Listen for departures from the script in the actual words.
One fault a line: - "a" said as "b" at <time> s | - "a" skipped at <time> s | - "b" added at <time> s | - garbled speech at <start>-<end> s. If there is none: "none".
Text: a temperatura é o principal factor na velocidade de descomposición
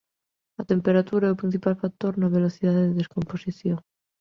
none